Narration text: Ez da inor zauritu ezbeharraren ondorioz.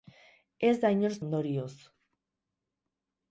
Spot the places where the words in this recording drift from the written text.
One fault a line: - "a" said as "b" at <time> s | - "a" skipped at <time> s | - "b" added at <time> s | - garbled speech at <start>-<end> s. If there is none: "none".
- "zauritu ezbeharraren" skipped at 1.1 s